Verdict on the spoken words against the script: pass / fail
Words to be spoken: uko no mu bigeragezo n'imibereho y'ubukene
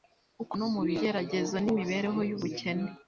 pass